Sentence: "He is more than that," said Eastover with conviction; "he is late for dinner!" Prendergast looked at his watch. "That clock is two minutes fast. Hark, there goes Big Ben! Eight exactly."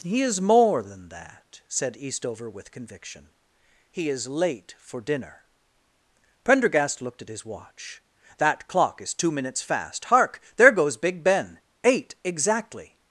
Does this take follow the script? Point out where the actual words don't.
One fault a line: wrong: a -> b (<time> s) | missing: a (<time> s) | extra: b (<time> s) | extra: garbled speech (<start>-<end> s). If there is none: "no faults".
no faults